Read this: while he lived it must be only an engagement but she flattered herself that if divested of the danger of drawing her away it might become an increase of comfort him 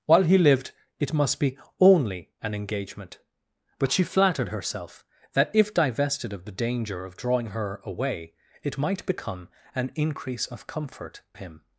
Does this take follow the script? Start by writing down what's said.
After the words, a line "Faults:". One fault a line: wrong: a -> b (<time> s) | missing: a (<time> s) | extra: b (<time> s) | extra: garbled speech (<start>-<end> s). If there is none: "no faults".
while he lived it must be only an engagement but she flattered herself that if divested of the danger of drawing her away it might become an increase of comfort him
Faults:
no faults